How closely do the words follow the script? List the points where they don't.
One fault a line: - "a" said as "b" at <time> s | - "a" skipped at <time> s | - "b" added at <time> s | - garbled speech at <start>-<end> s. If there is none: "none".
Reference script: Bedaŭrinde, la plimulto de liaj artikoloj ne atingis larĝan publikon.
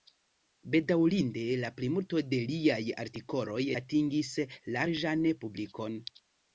- "ne" skipped at 3.6 s